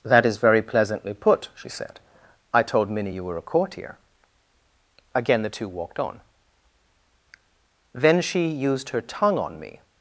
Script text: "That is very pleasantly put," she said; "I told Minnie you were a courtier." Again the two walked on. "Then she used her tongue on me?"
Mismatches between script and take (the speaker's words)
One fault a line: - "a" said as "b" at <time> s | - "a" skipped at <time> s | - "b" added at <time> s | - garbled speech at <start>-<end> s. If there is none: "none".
none